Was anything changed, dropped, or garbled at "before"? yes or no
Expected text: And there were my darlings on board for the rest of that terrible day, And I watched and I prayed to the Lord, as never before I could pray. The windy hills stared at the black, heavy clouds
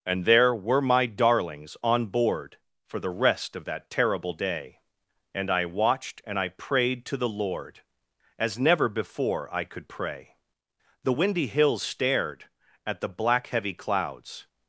no